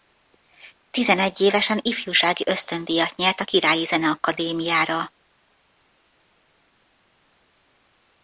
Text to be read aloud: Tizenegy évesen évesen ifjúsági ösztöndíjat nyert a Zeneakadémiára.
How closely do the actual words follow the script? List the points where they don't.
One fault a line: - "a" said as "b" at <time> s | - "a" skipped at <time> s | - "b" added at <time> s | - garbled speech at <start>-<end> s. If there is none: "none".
- "évesen" skipped at 1.8 s
- "Királyi" added at 3.4 s